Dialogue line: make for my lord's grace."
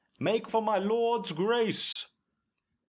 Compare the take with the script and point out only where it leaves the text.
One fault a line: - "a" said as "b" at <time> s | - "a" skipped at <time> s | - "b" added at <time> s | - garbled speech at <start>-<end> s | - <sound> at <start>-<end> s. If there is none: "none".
- dropout at 1.9-2.0 s